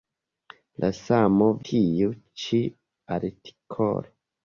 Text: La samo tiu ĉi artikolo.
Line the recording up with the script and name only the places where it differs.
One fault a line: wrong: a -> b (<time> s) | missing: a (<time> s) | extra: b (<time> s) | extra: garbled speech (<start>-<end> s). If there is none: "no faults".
no faults